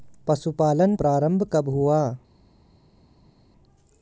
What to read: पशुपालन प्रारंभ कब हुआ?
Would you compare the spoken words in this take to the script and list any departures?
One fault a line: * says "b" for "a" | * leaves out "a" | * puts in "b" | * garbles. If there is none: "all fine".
all fine